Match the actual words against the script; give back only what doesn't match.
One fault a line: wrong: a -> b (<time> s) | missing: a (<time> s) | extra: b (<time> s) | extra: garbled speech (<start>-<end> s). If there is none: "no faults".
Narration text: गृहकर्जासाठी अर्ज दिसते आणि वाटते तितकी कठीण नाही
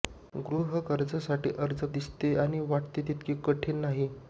no faults